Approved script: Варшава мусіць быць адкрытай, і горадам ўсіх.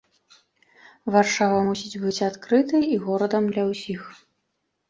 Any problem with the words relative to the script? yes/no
yes